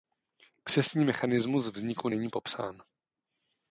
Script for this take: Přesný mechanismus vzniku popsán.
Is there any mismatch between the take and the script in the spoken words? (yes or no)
yes